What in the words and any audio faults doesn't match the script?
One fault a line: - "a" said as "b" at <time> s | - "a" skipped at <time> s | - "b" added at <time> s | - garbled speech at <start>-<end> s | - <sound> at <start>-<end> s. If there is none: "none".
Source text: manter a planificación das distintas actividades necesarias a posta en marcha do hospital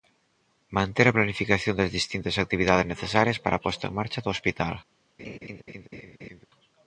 - "para" added at 3.4 s
- laugh at 5.2-6.5 s